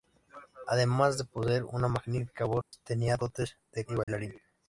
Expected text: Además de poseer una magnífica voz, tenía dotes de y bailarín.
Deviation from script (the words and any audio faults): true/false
true